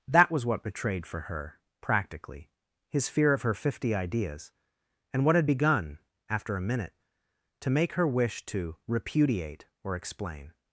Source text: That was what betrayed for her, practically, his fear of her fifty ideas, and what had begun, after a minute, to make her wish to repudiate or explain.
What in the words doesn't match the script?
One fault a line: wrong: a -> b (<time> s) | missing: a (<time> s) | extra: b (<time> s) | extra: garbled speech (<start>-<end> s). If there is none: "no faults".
no faults